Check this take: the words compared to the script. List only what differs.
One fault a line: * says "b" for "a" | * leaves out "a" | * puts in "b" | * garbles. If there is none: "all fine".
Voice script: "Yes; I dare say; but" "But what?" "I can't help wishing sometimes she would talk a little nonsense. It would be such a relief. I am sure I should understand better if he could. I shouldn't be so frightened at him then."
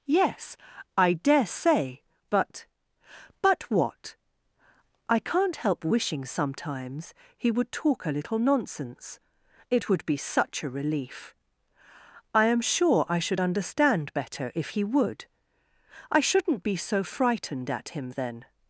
* says "he" for "she"
* says "would" for "could"